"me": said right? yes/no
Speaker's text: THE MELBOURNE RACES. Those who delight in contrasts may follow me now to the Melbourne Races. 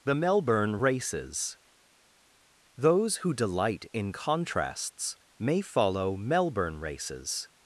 no